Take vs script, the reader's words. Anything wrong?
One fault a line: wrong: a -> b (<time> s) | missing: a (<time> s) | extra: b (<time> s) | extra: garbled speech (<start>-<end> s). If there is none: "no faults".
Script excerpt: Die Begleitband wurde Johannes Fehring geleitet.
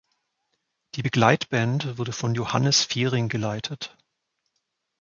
extra: von (2.1 s)